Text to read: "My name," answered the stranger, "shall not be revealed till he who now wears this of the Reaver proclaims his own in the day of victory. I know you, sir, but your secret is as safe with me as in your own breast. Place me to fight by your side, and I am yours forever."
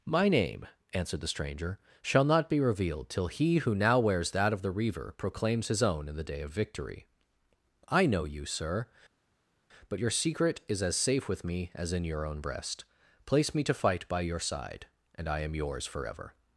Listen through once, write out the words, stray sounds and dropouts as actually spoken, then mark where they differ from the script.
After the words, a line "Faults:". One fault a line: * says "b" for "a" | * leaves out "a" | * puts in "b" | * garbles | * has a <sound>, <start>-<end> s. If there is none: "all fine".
"My name," answered the stranger, "shall not be revealed till he who now wears that of the Reaver proclaims his own in the day of victory. I know you, sir, but your secret is as safe with me as in your own breast. Place me to fight by your side, and I am yours forever."
Faults:
* says "that" for "this"